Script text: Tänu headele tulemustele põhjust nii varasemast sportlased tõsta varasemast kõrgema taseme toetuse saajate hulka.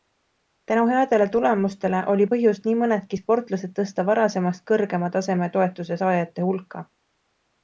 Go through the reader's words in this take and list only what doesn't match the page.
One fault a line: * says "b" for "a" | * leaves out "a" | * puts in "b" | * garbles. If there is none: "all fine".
* puts in "oli"
* says "mõnedki" for "varasemast"